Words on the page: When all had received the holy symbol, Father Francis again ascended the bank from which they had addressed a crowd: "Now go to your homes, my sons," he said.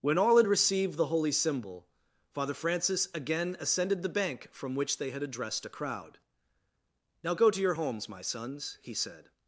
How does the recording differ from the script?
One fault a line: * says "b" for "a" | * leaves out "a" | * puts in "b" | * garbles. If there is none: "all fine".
all fine